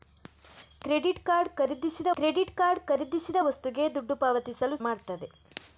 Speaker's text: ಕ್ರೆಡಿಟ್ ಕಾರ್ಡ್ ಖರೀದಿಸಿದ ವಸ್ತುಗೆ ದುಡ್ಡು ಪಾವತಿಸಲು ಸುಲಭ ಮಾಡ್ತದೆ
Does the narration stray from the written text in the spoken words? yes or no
yes